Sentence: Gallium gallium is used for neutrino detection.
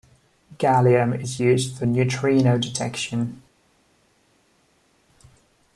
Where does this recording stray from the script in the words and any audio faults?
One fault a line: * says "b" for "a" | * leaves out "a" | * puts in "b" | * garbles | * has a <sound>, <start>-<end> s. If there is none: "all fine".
* leaves out "gallium"